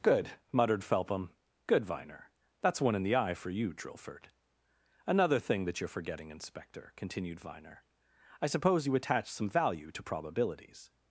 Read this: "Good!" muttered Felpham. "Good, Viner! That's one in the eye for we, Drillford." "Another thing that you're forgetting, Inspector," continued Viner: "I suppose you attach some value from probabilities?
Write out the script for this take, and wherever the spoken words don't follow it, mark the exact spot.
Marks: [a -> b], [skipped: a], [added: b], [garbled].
"Good!" muttered Felpham. "Good, Viner! That's one in the eye for [we, -> you] Drillford." "Another thing that you're forgetting, Inspector," continued Viner: "I suppose you attach some value [from -> to] probabilities?